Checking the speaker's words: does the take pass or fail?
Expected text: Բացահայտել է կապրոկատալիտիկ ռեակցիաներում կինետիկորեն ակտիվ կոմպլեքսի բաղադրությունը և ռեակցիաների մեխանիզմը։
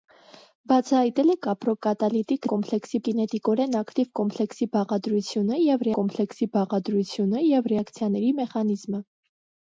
fail